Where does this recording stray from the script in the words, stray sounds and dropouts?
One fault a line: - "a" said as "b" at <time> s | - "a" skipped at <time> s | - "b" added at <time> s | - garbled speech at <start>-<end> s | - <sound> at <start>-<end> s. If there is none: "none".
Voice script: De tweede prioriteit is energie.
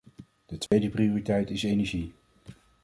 - dropout at 0.7-0.7 s